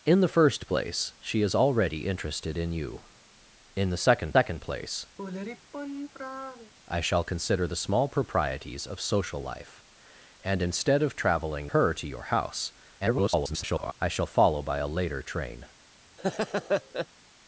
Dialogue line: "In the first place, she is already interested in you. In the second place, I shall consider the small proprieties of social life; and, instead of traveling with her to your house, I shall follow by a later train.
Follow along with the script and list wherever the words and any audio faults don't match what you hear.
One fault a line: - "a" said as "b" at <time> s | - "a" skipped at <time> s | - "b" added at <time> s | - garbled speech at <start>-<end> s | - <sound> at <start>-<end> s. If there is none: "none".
- "second" added at 4.3 s
- sigh at 5.2-6.7 s
- "with" skipped at 11.7 s
- garbled speech at 13.0-13.9 s
- laugh at 16.2-17.1 s